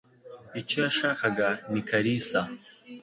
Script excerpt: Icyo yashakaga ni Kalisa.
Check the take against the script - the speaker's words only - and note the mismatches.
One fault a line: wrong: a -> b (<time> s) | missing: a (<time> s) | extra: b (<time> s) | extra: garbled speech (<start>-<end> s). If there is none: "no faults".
no faults